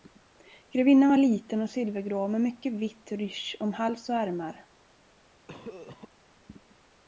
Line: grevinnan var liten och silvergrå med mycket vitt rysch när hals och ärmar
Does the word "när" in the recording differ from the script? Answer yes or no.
yes